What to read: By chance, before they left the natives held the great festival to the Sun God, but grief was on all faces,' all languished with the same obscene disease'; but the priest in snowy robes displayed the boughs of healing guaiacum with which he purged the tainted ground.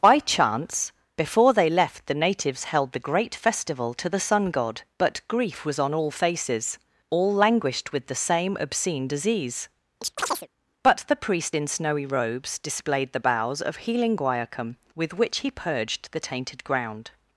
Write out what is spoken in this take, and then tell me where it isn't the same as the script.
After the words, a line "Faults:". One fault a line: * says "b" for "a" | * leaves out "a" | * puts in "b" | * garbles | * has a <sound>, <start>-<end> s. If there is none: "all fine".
By chance, before they left the natives held the great festival to the Sun God, but grief was on all faces,' all languished with the same obscene disease'; but the priest in snowy robes displayed the boughs of healing guaiacum with which he purged the tainted ground.
Faults:
* has a chirp, 10.0-10.5 s